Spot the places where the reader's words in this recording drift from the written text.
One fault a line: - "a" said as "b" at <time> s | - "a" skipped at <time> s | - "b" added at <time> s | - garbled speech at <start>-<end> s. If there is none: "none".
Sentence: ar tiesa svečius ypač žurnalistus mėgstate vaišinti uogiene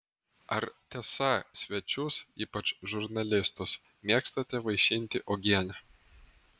none